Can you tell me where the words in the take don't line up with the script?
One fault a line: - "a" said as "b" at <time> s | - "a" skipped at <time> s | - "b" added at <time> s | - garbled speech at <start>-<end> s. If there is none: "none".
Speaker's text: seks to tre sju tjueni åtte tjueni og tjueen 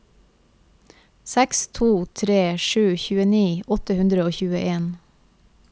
- "tjueni" said as "hundre" at 4.0 s